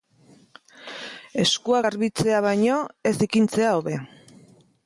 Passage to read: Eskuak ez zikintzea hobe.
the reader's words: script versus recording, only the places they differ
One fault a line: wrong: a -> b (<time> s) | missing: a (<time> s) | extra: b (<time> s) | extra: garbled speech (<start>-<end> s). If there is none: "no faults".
extra: garbitzea baino (1.9 s)